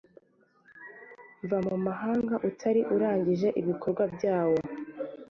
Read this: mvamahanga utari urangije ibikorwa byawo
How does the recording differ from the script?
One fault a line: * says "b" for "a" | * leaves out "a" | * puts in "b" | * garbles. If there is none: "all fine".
all fine